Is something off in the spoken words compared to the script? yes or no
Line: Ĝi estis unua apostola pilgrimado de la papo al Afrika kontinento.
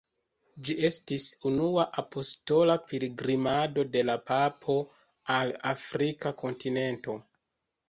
no